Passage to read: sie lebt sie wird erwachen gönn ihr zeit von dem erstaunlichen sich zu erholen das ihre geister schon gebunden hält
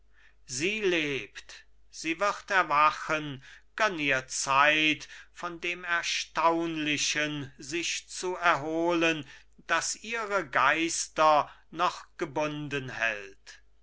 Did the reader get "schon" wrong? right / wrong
wrong